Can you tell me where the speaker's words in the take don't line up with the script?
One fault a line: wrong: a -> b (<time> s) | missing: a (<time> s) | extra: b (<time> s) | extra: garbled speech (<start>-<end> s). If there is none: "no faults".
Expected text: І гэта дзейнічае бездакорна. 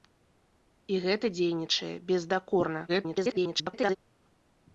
extra: garbled speech (2.9-4.0 s)